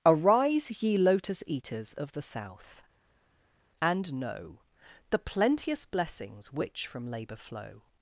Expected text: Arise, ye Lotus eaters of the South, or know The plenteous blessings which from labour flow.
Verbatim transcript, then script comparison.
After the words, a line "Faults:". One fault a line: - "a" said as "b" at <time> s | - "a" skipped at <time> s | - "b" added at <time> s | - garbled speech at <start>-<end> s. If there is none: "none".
Arise, ye Lotus eaters of the South, and know The plenteous blessings which from labour flow.
Faults:
- "or" said as "and" at 3.8 s